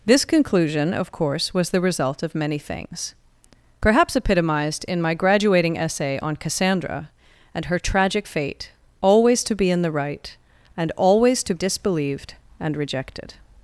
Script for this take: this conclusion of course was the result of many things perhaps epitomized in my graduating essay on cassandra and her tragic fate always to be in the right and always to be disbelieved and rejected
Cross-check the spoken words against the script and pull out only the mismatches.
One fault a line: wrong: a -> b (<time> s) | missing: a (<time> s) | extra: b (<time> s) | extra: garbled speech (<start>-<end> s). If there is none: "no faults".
missing: be (11.5 s)